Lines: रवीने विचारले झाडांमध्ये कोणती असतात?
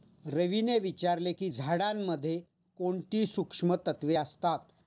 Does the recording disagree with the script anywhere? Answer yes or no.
yes